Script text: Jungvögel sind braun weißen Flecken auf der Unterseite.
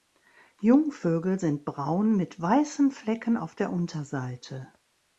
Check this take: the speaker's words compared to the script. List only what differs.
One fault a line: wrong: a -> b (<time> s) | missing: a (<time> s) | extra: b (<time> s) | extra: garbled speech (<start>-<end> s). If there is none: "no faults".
extra: mit (2.1 s)